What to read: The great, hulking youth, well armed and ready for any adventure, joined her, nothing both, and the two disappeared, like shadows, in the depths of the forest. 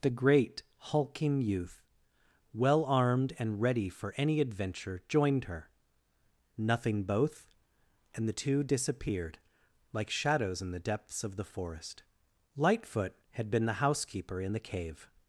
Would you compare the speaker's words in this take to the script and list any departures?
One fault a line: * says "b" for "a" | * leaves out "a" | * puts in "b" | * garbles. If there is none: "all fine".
* puts in "Lightfoot had been the housekeeper in the cave"